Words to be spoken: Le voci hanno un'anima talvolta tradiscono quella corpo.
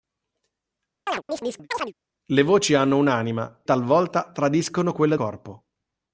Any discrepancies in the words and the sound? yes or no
yes